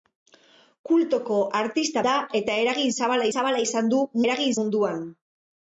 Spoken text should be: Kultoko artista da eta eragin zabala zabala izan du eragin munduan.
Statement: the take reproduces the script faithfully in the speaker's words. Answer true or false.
true